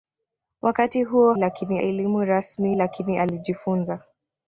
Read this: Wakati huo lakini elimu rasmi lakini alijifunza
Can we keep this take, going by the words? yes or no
yes